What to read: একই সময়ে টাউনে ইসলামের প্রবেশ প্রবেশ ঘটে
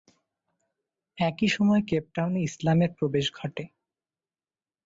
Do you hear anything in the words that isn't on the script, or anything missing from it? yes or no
yes